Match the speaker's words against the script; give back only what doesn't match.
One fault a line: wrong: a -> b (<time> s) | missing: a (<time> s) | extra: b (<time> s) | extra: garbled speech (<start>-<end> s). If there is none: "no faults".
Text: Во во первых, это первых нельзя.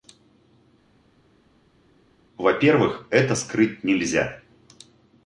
missing: во (2.5 s)
wrong: первых -> скрыть (3.3 s)